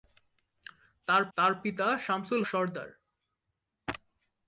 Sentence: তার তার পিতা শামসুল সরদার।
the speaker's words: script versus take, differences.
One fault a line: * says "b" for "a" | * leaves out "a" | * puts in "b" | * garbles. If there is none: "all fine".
all fine